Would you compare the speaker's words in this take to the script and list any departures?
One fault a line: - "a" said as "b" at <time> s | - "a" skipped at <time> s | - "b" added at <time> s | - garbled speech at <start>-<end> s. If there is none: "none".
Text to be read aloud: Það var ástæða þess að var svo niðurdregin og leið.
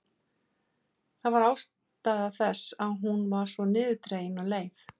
- "hún" added at 3.0 s